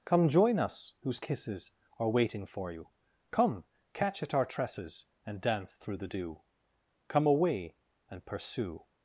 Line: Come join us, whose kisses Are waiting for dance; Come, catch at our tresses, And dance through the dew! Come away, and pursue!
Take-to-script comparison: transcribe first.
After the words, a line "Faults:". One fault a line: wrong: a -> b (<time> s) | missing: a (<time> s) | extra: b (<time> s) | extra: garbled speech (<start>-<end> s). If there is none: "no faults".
Come join us, whose kisses Are waiting for you; Come, catch at our tresses, And dance through the dew! Come away, and pursue!
Faults:
wrong: dance -> you (2.7 s)